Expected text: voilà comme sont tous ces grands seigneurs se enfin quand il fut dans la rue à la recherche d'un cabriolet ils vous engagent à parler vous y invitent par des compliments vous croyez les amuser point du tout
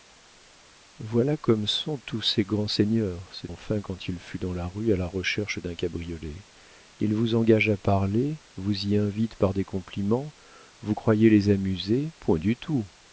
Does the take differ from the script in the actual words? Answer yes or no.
no